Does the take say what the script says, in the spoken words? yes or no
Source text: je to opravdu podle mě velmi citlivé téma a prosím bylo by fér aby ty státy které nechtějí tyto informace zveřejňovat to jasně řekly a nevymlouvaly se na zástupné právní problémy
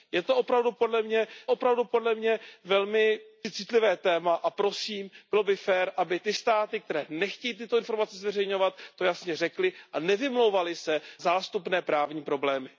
no